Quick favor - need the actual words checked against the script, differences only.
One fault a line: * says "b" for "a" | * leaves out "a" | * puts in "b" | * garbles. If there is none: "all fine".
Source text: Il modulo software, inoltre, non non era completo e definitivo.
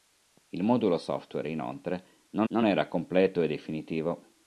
all fine